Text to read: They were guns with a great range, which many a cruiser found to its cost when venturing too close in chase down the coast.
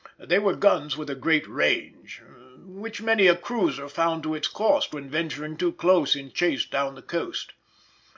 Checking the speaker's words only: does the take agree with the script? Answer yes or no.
yes